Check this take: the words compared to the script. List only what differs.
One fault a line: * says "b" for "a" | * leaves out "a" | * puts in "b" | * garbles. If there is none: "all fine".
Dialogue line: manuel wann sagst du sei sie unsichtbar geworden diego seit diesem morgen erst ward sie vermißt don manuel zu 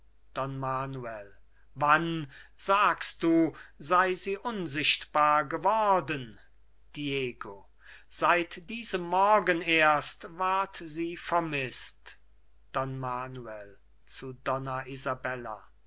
all fine